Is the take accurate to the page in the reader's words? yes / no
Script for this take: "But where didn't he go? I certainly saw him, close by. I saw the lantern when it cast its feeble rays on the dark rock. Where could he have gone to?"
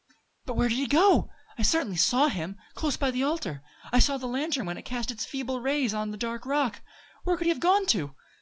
no